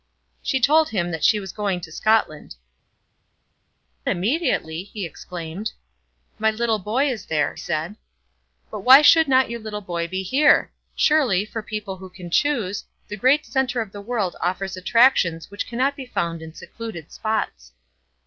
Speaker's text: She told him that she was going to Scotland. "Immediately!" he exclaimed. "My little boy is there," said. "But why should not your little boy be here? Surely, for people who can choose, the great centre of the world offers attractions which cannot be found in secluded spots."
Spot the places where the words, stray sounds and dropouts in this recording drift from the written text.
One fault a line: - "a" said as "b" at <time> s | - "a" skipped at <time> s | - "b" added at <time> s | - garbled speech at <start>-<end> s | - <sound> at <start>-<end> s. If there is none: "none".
none